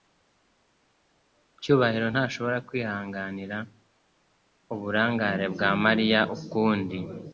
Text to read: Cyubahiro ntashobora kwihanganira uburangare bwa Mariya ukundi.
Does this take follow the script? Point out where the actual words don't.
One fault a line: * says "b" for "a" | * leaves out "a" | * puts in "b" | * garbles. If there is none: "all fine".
all fine